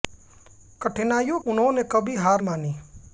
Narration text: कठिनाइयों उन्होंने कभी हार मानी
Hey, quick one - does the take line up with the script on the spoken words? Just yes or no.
yes